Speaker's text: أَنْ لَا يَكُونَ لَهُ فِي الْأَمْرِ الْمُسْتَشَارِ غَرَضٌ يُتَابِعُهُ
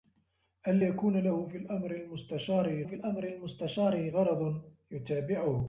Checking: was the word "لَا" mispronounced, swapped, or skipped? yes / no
yes